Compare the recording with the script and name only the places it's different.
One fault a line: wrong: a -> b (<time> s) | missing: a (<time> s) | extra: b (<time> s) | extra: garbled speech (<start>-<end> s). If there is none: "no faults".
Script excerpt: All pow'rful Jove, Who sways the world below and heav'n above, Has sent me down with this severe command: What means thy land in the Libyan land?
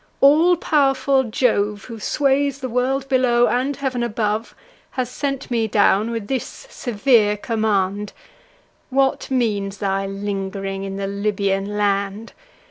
wrong: land -> ling'ring (10.1 s)